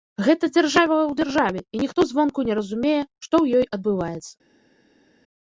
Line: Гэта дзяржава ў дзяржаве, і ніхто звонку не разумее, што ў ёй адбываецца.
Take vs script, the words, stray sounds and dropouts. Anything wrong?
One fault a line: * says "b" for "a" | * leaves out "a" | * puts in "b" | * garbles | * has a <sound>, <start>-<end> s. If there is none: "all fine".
all fine